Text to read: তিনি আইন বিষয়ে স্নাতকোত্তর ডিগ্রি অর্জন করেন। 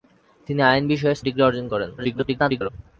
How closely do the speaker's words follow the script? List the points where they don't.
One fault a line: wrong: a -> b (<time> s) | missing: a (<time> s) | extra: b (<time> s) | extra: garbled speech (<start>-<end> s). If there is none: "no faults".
missing: স্নাতকোত্তর (1.2 s)
extra: garbled speech (2.0-2.7 s)